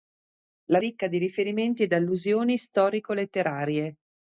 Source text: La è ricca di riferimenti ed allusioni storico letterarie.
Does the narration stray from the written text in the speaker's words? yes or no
no